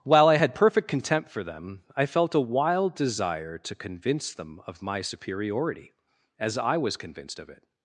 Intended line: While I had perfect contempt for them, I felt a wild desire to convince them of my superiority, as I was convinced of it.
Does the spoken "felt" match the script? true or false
true